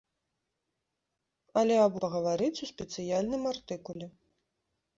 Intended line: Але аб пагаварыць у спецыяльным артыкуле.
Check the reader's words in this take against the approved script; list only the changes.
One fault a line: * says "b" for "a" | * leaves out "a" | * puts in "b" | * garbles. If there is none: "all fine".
all fine